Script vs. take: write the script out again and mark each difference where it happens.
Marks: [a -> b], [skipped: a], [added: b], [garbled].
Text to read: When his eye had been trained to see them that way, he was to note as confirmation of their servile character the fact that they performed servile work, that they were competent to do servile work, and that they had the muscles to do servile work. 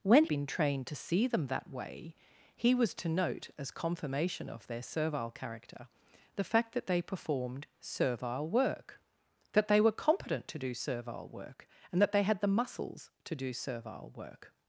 When [skipped: his eye had] been trained to see them that way, he was to note as confirmation of their servile character the fact that they performed servile work, that they were competent to do servile work, and that they had the muscles to do servile work.